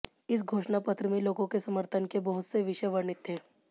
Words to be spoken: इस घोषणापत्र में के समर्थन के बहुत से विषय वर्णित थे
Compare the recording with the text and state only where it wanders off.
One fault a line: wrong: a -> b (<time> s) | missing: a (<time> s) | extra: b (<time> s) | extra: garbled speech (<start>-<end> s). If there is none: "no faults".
extra: लोगों (1.2 s)